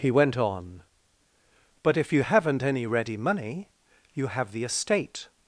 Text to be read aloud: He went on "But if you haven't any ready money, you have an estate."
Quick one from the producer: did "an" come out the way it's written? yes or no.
no